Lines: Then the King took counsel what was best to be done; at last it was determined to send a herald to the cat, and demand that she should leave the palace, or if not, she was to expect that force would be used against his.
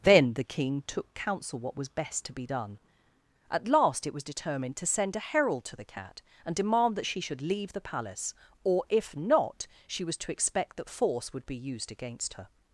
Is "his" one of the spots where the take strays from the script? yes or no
yes